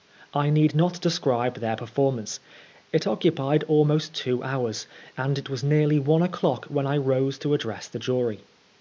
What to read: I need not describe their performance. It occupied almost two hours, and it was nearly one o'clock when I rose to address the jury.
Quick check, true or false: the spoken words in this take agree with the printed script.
true